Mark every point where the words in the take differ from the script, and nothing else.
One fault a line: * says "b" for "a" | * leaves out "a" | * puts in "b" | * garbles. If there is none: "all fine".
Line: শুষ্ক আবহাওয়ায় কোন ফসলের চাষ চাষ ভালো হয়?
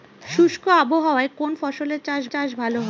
all fine